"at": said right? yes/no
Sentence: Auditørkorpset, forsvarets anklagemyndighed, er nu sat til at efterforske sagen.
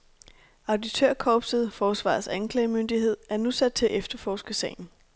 yes